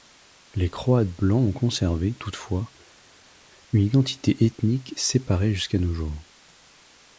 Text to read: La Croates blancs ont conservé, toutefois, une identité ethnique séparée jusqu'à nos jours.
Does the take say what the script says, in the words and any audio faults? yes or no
no